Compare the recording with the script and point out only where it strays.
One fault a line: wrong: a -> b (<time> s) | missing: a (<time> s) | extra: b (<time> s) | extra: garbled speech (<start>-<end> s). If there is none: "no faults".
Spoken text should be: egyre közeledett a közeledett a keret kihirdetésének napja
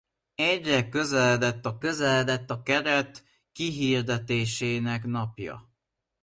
no faults